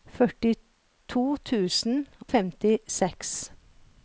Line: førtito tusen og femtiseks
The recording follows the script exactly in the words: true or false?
false